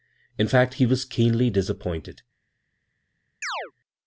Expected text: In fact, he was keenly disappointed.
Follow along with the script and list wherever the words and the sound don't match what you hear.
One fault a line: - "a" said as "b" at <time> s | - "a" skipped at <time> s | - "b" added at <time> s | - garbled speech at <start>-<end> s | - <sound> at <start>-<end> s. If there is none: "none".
- chirp at 3.4-3.7 s